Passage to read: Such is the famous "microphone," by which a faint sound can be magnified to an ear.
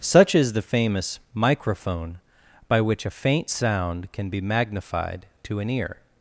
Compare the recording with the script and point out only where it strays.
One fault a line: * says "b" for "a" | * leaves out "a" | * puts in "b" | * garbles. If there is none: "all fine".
all fine